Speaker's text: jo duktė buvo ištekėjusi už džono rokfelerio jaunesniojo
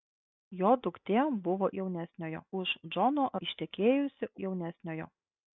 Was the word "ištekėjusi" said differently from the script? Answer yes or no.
yes